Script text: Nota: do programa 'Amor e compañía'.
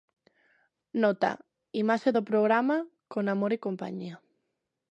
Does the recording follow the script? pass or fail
fail